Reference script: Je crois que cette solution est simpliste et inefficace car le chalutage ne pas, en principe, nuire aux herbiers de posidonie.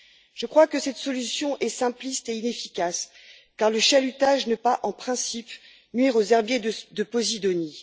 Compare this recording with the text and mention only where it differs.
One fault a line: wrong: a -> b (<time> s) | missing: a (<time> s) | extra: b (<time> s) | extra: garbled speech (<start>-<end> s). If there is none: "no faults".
no faults